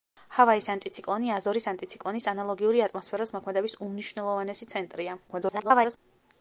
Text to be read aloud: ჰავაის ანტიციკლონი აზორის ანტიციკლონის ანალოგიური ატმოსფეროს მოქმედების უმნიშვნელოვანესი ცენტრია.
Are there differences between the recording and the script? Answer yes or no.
yes